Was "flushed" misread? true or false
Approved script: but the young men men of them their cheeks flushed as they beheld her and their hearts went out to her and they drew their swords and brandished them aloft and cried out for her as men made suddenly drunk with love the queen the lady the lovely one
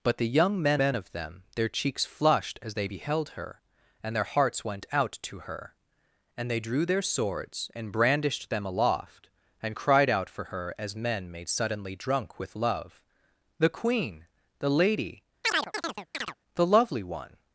false